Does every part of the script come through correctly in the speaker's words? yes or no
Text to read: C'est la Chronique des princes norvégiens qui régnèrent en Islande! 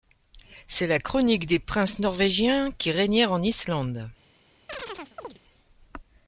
yes